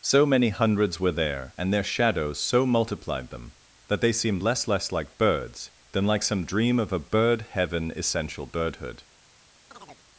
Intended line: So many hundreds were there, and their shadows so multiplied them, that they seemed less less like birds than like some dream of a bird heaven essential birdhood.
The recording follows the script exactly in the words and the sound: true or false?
false